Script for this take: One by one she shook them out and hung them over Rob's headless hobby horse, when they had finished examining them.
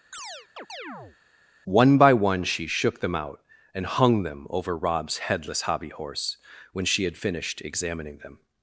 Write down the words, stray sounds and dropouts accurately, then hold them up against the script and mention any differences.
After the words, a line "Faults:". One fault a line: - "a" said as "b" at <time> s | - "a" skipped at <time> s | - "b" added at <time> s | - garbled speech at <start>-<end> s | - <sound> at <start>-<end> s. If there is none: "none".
One by one she shook them out and hung them over Rob's headless hobby horse, when she had finished examining them.
Faults:
- chirp at 0.1-1.2 s
- "they" said as "she" at 6.9 s